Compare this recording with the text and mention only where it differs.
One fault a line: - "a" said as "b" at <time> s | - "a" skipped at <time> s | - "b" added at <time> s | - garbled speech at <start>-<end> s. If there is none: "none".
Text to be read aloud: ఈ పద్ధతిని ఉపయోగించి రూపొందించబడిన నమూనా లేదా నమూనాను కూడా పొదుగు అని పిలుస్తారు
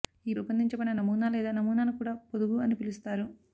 - "పద్ధతిని ఉపయోగించి" skipped at 0.3 s